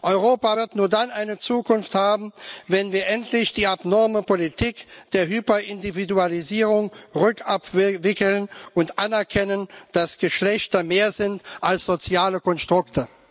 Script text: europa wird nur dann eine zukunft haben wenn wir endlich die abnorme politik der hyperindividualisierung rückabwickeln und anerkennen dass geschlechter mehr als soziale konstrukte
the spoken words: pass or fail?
fail